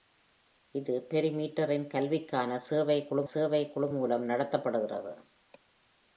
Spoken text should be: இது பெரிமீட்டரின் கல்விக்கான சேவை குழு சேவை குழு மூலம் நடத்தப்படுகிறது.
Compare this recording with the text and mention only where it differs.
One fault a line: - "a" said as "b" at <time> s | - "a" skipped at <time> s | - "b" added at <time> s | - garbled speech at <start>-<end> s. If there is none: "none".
none